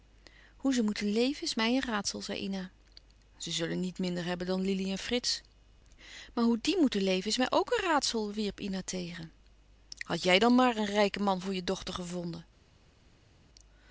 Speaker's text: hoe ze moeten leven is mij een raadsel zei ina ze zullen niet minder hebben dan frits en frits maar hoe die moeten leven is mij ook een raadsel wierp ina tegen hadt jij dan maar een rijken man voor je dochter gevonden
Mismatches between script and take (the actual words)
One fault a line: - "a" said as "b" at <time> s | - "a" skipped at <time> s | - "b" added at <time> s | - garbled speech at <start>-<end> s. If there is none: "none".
- "frits" said as "lili" at 4.6 s